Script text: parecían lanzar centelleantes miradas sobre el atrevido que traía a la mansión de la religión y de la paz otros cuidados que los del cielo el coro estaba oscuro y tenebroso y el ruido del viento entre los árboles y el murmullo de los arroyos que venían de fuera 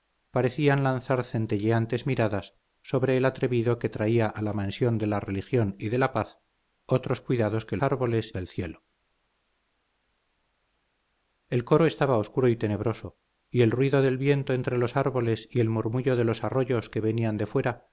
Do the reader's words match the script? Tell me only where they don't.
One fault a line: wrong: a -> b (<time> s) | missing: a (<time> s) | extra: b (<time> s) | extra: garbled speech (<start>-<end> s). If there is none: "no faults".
wrong: los -> árboles (7.8 s)